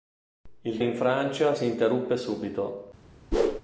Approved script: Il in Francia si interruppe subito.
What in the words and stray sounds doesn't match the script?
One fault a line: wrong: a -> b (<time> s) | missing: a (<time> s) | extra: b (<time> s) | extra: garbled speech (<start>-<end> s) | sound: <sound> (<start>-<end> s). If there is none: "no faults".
sound: whoosh (3.3-3.6 s)